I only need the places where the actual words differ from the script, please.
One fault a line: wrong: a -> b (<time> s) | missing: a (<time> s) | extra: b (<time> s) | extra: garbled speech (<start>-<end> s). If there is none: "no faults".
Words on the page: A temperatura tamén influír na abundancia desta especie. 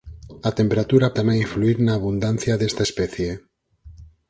no faults